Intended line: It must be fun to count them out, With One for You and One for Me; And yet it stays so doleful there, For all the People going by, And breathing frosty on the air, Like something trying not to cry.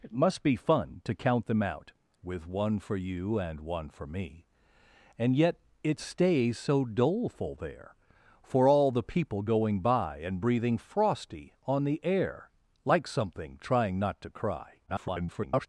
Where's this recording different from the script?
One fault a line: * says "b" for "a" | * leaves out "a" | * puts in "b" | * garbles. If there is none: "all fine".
* garbles